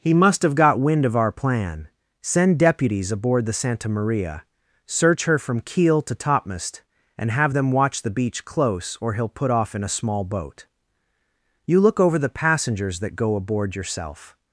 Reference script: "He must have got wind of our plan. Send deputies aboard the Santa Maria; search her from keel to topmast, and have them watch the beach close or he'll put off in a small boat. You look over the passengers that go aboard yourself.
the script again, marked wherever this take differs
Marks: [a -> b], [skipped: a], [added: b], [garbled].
"He must have got wind of our plan. Send deputies aboard the Santa Maria; search her from keel to topmast, and have them watch the beach close or he'll put off in a small boat. You look over the passengers that go aboard yourself.